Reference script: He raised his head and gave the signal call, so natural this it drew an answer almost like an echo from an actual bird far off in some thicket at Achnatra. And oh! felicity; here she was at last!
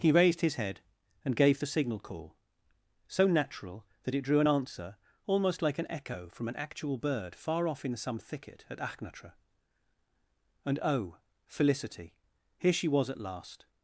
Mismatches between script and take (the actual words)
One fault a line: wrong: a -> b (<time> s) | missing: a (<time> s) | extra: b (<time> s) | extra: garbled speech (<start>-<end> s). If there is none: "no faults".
wrong: this -> that (4.0 s)